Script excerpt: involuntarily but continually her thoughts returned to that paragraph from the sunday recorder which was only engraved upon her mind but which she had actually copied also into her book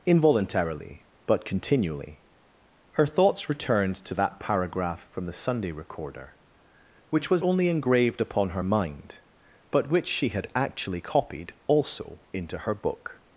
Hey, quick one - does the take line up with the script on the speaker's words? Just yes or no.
yes